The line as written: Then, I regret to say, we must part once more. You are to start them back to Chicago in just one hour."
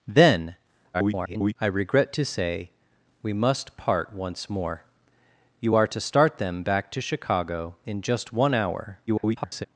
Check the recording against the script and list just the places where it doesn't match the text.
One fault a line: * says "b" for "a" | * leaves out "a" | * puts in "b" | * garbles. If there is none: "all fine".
* garbles
* garbles